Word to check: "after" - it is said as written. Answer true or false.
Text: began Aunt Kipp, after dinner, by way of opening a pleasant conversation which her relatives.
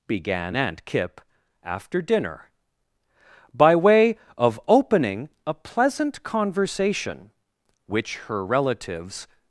true